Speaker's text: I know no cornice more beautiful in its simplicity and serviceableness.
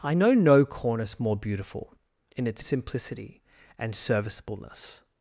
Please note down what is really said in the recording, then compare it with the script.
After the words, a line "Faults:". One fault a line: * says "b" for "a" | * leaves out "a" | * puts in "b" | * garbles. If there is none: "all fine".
I know no cornice more beautiful in its simplicity and serviceableness.
Faults:
all fine